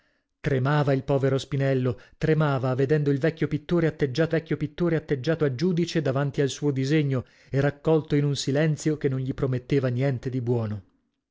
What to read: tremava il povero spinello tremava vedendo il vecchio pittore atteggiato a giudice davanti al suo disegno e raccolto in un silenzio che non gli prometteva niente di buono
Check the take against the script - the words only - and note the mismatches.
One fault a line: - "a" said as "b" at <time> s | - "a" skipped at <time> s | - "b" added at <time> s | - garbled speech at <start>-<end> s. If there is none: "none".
- "vecchio pittore atteggiato" added at 4.3 s